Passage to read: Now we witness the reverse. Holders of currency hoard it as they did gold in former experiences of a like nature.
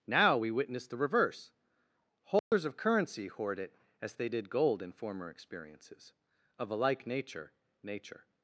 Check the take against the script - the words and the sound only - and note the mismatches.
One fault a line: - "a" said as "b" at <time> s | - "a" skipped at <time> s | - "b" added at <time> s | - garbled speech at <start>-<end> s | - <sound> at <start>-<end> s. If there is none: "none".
- dropout at 2.4-2.5 s
- "nature" added at 7.8 s